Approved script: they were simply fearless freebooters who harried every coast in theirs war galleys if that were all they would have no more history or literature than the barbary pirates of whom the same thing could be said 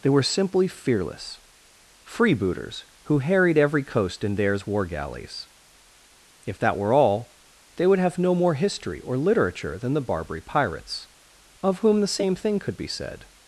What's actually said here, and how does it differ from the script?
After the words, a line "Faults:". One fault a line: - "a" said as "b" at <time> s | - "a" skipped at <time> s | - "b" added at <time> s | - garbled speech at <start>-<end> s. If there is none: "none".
they were simply fearless freebooters who harried every coast in theirs war galleys if that were all they would have no more history or literature than the barbary pirates of whom the same thing could be said
Faults:
none